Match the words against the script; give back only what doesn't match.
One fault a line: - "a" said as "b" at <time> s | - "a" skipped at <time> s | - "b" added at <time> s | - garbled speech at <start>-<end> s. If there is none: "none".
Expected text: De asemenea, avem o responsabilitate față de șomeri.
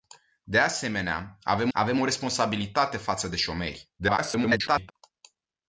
- "avem" added at 1.7 s
- garbled speech at 4.0-4.9 s